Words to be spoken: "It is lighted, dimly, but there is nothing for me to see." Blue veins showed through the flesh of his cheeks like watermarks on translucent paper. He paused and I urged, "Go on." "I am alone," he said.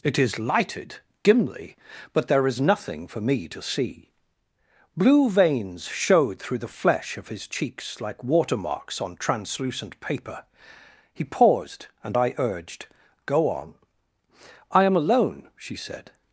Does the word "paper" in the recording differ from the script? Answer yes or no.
no